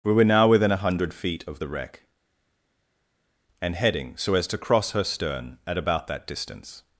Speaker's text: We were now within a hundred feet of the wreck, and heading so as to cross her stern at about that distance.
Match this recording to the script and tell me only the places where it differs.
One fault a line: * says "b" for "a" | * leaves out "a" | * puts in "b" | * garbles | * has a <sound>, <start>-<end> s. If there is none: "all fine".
all fine